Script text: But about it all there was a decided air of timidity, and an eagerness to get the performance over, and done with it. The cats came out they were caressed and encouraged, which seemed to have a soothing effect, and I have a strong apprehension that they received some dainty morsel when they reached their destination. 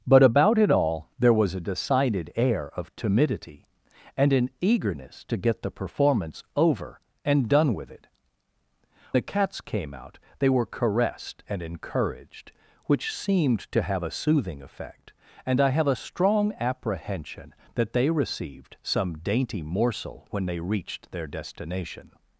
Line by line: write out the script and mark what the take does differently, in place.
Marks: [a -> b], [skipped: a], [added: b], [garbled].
But about it all there was a decided air of timidity, and an eagerness to get the performance over, and done with it. The cats came out they were caressed and encouraged, which seemed to have a soothing effect, and I have a strong apprehension that they received some dainty morsel when they reached their destination.